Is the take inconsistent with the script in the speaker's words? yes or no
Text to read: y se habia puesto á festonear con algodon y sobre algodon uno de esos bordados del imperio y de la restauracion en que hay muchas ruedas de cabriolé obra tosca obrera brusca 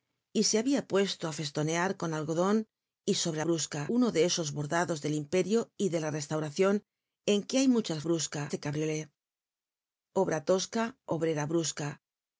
yes